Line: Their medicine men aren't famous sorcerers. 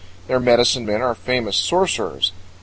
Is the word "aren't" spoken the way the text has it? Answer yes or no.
no